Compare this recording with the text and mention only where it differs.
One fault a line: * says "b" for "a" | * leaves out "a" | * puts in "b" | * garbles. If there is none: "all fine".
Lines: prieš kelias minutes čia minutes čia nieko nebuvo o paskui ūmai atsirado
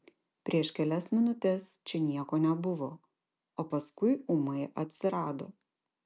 * leaves out "minutes čia"